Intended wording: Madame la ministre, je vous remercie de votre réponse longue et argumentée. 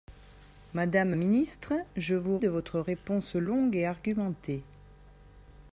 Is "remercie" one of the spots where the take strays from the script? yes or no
yes